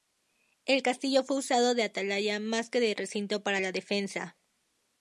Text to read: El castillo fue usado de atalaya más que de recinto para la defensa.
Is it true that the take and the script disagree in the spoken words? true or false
false